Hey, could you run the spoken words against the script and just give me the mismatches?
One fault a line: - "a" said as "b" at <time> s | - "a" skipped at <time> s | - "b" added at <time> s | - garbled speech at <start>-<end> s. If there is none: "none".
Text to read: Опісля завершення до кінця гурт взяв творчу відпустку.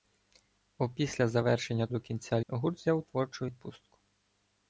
none